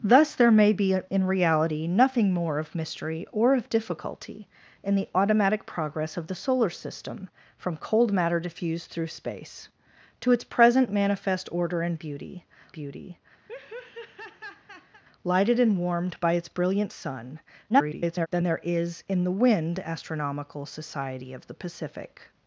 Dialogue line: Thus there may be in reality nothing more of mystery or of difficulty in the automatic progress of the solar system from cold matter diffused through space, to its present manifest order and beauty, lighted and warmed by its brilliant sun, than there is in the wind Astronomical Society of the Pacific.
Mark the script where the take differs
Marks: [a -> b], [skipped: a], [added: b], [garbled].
Thus there may be in reality nothing more of mystery or of difficulty in the automatic progress of the solar system from cold matter diffused through space, to its present manifest order and beauty, [added: beauty] lighted and warmed by its brilliant sun, [garbled] than there is in the wind Astronomical Society of the Pacific.